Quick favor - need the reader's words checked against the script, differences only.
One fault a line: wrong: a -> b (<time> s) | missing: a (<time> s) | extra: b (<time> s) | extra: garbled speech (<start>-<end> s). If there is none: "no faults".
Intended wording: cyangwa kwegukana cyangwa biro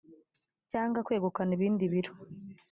wrong: cyangwa -> ibindi (1.6 s)